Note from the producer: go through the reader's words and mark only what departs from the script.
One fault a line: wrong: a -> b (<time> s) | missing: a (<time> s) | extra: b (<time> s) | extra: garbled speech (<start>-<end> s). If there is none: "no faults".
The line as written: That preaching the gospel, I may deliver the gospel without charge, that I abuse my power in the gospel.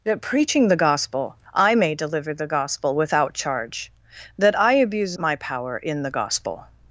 no faults